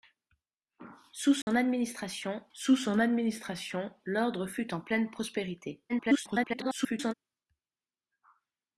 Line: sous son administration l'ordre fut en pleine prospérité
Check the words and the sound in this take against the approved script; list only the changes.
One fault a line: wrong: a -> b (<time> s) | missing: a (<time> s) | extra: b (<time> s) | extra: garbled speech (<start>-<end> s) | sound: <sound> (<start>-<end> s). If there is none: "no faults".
sound: dropout (1.4-1.5 s)
extra: sous son administration (2.5 s)
extra: garbled speech (5.9-7.1 s)